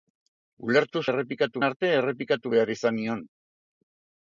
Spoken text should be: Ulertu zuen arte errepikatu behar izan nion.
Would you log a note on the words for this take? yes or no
yes